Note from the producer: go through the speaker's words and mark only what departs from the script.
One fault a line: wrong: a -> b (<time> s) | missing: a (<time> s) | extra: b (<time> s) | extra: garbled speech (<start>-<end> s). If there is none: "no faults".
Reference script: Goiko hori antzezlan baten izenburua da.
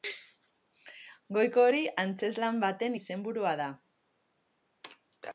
no faults